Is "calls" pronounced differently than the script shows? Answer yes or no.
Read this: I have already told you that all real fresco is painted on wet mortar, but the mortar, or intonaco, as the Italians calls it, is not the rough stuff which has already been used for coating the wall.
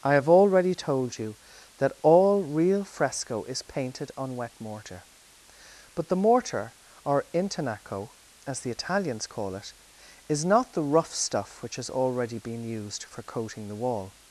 yes